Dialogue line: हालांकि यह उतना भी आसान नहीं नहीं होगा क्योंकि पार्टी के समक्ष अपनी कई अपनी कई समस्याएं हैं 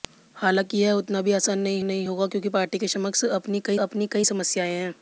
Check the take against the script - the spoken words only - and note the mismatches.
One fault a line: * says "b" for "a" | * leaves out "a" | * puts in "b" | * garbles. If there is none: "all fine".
all fine